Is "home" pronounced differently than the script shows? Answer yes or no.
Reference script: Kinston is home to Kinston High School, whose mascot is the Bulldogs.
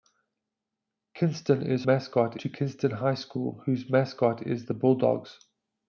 yes